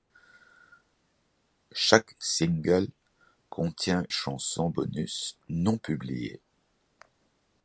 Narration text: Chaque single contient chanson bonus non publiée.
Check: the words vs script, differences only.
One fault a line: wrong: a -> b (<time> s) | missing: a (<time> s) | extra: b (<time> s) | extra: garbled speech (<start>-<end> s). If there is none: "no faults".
no faults